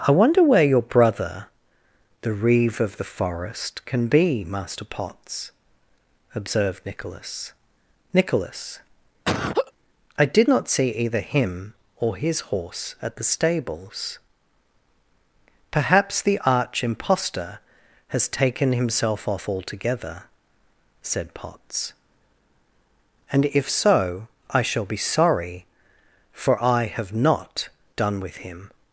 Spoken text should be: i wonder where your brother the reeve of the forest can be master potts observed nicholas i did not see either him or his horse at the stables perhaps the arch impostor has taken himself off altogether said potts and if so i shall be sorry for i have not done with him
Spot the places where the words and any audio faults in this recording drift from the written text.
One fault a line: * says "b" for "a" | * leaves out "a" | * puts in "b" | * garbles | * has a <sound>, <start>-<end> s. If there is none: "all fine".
* puts in "nicholas"
* has a laugh, 9.2-9.7 s